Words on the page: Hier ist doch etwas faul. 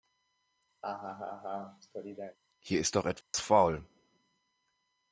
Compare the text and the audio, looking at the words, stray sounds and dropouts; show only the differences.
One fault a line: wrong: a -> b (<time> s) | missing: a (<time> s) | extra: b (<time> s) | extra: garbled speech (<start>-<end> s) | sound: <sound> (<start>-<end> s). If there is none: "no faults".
sound: laugh (0.8-2.4 s)
sound: dropout (3.2-3.3 s)